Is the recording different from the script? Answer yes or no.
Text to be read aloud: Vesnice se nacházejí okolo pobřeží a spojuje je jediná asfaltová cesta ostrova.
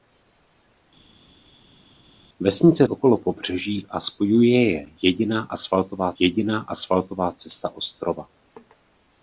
yes